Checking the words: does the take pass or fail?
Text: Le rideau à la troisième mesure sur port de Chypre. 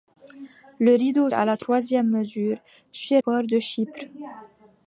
pass